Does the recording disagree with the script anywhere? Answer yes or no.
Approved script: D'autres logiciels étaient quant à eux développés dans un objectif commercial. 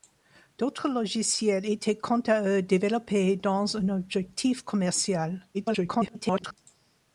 yes